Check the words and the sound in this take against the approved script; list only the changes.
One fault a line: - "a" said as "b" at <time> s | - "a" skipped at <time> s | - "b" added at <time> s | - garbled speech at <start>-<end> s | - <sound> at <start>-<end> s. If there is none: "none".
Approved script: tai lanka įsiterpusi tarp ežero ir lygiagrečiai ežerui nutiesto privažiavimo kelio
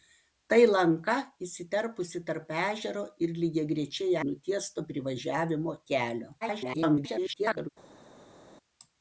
- "ežerui" skipped at 4.2 s
- garbled speech at 6.4-7.7 s